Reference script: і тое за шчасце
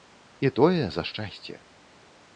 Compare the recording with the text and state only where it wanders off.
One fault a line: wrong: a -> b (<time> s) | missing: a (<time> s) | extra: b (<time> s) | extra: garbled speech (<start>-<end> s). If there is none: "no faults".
no faults